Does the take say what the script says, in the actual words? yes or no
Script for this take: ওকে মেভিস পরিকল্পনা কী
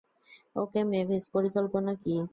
yes